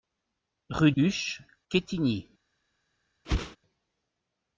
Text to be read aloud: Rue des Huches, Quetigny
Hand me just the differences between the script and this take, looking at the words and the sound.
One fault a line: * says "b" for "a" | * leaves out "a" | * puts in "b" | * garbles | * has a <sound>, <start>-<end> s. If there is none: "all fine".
* leaves out "des"
* has a whoosh, 3.2-3.6 s